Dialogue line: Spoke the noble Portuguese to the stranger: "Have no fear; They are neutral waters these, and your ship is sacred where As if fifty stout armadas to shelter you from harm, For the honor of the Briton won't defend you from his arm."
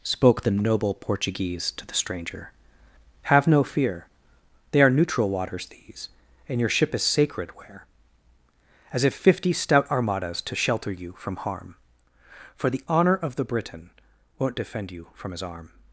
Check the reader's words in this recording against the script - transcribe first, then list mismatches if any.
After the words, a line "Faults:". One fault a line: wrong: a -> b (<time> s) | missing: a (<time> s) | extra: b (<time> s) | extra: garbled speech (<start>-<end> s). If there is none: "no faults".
Spoke the noble Portuguese to the stranger: "Have no fear; They are neutral waters these, and your ship is sacred where As if fifty stout armadas to shelter you from harm, For the honor of the Briton won't defend you from his arm."
Faults:
no faults